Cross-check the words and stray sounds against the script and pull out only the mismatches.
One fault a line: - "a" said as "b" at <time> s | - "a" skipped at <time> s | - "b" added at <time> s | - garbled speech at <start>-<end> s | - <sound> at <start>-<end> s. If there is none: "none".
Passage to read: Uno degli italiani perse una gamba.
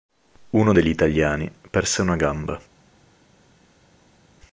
none